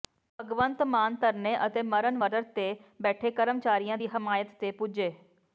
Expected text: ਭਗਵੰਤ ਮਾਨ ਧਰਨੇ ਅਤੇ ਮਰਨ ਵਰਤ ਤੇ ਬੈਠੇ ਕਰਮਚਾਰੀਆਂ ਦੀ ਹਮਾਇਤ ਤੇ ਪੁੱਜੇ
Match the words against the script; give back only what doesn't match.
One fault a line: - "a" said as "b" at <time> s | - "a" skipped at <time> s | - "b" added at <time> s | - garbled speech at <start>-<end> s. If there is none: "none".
none